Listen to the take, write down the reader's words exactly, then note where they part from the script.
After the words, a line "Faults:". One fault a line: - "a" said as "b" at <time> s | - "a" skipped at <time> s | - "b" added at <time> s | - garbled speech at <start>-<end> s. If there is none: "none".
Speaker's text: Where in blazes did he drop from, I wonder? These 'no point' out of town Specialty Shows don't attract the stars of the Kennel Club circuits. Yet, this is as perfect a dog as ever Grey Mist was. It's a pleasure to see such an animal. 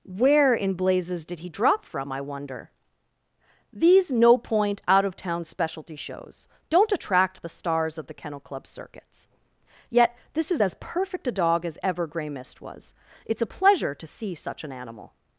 Where in blazes did he drop from, I wonder? These 'no point' out of town Specialty Shows don't attract the stars of the Kennel Club circuits. Yet, this is as perfect a dog as ever Grey Mist was. It's a pleasure to see such an animal.
Faults:
none